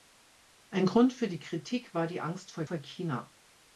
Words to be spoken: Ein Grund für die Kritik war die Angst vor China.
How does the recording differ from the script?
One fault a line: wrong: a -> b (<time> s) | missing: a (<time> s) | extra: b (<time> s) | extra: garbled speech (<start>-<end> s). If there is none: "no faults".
extra: vor (2.6 s)